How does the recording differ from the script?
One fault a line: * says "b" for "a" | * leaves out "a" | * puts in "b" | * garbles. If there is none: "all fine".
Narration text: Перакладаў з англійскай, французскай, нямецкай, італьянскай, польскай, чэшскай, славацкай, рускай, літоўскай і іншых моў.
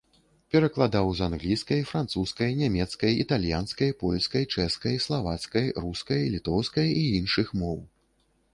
all fine